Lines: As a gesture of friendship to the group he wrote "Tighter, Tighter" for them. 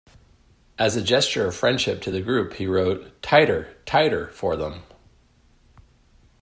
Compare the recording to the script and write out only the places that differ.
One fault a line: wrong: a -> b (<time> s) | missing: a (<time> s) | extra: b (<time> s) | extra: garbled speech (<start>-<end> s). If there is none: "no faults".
no faults